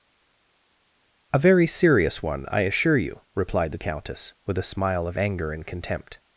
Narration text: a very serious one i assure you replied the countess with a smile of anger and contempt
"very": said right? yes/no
yes